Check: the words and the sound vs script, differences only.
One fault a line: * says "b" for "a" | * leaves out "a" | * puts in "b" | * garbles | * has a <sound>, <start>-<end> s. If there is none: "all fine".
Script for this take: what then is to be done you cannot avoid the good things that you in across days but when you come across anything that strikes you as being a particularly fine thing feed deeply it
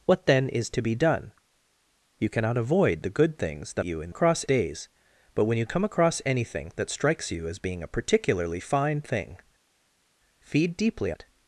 all fine